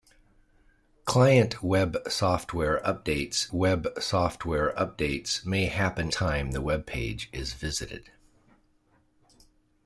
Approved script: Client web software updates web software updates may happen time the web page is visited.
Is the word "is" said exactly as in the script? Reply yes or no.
yes